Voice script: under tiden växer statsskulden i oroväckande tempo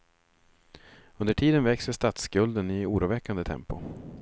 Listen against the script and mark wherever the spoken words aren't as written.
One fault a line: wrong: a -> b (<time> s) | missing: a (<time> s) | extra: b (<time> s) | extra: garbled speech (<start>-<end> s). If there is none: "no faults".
no faults